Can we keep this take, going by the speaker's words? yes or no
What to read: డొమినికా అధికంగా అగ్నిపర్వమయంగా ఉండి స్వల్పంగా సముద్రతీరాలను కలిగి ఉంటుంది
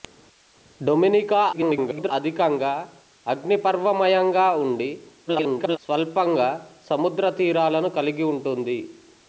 no